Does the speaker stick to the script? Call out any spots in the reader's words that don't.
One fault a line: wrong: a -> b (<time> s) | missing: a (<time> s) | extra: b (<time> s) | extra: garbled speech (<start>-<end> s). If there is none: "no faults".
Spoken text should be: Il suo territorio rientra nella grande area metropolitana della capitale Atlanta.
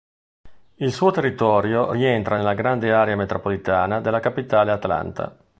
no faults